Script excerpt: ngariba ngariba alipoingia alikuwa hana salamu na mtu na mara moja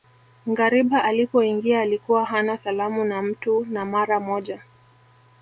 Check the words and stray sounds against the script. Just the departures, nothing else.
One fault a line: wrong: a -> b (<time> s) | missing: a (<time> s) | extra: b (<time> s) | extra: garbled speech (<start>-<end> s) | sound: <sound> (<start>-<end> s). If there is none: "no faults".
missing: ngariba (1.1 s)